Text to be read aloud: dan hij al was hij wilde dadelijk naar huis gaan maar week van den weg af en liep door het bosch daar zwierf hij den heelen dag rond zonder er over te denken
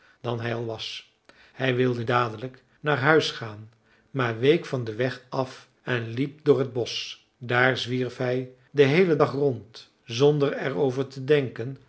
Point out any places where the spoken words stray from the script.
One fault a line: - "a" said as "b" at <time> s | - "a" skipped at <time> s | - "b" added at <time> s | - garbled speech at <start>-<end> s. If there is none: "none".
none